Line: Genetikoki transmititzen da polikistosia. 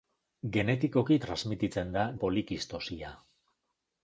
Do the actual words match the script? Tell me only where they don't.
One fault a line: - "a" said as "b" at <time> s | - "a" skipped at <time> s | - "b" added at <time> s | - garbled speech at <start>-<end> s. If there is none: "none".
none